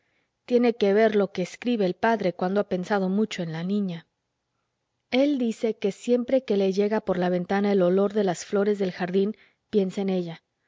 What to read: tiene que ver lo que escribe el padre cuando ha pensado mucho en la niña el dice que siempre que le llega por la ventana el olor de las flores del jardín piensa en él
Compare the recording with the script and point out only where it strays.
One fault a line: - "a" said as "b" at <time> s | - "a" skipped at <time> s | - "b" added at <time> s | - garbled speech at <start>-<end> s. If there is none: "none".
- "él" said as "ella" at 10.1 s